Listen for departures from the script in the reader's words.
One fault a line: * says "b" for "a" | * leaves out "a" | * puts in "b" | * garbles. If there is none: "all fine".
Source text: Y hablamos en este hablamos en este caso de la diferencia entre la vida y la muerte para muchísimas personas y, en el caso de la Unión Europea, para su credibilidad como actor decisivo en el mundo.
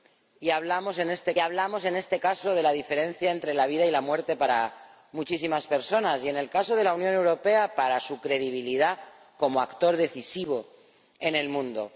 all fine